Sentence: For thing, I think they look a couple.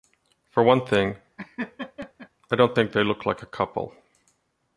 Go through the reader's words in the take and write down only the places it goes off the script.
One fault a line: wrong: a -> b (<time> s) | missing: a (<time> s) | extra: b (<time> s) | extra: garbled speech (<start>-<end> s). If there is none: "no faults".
extra: one (0.6 s)
extra: don't (2.6 s)
extra: like (3.3 s)